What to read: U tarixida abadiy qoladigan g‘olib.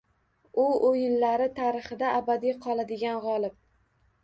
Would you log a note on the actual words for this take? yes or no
yes